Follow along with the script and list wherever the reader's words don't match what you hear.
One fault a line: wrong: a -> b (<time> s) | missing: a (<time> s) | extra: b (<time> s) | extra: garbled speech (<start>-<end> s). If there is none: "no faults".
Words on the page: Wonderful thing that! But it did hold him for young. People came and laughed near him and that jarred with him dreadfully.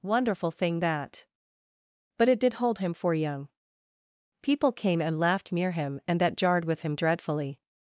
no faults